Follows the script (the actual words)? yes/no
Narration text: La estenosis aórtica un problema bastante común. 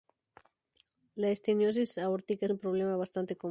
yes